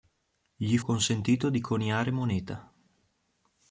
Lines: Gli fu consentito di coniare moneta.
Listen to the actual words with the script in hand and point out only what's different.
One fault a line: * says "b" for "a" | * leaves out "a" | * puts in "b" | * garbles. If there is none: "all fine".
* leaves out "fu"